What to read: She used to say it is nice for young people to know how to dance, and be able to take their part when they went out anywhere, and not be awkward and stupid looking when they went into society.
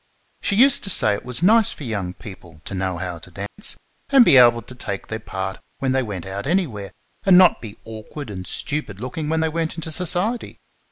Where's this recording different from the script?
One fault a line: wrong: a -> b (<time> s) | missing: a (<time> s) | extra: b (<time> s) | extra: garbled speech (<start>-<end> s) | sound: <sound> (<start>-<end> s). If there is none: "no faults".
wrong: is -> was (1.2 s)
sound: dropout (3.5-3.6 s)